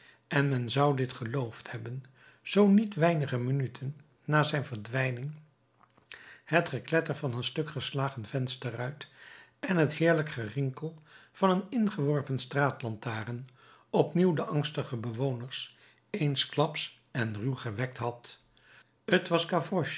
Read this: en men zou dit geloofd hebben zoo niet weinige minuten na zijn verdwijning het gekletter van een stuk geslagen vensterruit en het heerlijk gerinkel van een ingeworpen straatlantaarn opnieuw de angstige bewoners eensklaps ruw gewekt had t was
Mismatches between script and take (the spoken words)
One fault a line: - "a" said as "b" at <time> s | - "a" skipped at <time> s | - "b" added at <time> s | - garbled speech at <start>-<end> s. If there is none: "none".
- "en" added at 17.1 s